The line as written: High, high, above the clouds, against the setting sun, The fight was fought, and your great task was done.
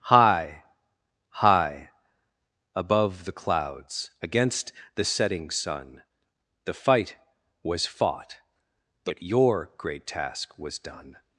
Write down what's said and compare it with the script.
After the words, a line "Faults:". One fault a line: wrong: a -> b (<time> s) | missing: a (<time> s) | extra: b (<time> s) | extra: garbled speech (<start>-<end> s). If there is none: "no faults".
High, high, above the clouds, against the setting sun, The fight was fought, but your great task was done.
Faults:
wrong: and -> but (9.0 s)